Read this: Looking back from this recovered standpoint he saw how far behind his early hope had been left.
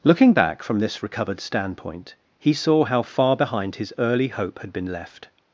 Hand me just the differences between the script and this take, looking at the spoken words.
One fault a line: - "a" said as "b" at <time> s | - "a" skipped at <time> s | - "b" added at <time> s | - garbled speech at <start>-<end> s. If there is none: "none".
none